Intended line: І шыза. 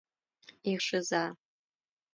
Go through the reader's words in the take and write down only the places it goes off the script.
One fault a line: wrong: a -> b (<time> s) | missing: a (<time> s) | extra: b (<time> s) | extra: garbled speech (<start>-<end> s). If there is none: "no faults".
no faults